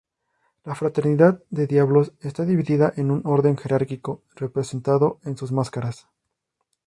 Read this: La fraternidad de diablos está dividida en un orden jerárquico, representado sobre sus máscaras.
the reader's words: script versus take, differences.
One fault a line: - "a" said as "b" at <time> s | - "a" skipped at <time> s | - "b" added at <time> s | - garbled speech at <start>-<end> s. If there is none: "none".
- "sobre" said as "en" at 5.2 s